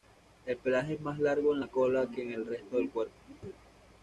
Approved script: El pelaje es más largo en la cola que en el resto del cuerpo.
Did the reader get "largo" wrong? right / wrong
right